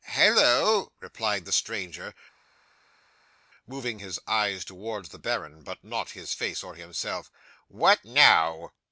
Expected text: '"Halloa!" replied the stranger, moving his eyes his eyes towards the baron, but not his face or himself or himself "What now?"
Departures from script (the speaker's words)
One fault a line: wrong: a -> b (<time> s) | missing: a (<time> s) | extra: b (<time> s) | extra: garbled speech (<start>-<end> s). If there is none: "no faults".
missing: his eyes (4.6 s)
missing: or himself (7.3 s)